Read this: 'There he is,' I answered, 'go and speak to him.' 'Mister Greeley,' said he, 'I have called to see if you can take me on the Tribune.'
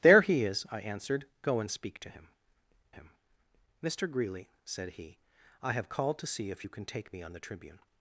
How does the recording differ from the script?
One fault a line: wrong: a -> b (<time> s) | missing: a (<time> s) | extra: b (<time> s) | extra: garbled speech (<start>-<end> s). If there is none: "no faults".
extra: him (2.9 s)